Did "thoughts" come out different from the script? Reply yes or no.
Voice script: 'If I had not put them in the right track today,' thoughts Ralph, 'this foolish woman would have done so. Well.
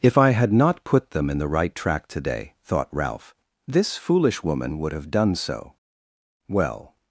yes